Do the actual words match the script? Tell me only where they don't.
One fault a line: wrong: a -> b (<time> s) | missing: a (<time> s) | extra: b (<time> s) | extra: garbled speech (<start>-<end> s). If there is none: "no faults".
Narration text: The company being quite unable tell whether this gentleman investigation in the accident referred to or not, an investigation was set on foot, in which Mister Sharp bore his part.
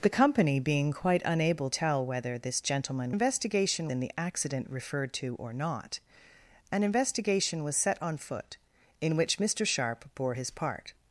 no faults